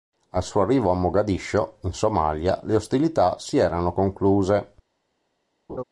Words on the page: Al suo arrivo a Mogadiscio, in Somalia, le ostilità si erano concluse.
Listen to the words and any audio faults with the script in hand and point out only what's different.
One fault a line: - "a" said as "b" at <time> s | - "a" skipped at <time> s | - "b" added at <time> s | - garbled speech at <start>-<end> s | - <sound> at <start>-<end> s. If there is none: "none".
- laugh at 5.7-5.8 s